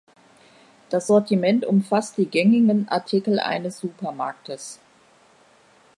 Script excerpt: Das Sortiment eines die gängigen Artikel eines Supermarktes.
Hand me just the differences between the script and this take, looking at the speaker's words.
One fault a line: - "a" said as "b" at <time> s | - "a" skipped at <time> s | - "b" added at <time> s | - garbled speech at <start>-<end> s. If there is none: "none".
- "eines" said as "umfasst" at 1.6 s